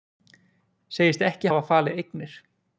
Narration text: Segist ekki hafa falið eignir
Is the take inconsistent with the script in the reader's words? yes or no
no